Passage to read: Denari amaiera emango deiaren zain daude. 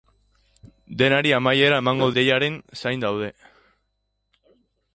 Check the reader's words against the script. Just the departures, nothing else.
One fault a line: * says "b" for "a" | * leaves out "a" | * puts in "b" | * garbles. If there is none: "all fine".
all fine